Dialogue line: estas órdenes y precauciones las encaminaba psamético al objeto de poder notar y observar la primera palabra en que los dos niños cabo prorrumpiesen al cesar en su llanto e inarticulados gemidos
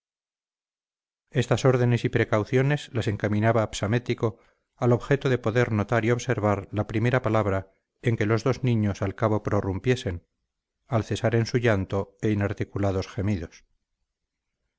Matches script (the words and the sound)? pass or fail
fail